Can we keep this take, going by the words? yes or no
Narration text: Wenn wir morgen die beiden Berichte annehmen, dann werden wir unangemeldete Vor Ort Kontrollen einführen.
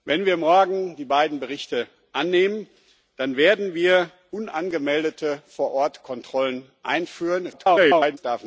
no